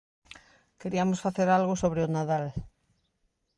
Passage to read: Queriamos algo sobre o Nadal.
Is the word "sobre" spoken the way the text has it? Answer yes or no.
yes